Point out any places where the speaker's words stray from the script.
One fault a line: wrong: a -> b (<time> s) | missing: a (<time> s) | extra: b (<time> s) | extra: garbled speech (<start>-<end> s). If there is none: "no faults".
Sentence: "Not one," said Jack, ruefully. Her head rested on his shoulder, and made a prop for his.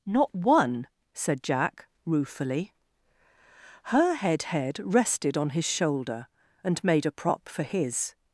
extra: head (4.5 s)